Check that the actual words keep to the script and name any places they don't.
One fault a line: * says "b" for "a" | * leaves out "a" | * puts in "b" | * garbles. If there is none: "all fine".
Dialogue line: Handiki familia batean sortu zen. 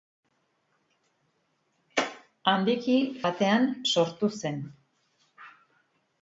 * leaves out "familia"